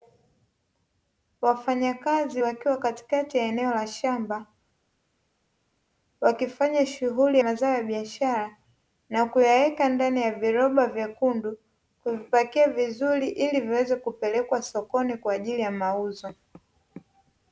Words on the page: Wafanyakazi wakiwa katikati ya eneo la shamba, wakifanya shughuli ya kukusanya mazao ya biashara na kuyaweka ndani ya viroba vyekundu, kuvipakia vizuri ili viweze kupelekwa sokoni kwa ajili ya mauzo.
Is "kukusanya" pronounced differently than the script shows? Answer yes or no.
yes